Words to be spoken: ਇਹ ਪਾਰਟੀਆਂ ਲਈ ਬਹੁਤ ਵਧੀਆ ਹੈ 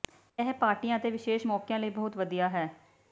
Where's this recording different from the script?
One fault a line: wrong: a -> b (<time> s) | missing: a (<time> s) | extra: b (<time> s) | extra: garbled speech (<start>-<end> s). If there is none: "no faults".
extra: ਅਤੇ ਵਿਸ਼ੇਸ਼ ਮੌਕਿਆਂ (1.0 s)